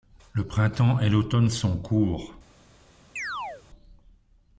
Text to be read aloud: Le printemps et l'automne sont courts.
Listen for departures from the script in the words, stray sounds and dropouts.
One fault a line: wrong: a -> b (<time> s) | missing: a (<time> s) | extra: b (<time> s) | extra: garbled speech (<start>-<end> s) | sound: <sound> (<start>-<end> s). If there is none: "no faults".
sound: chirp (3.2-3.6 s)